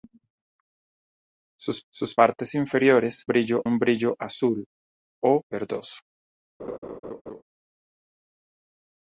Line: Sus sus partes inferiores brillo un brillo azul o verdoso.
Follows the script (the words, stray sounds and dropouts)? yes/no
no